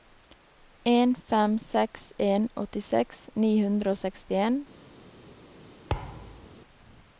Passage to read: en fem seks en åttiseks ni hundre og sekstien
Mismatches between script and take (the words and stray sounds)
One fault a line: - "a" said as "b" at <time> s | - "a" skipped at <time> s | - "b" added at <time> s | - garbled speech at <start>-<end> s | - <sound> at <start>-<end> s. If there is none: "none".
- thud at 5.9-6.6 s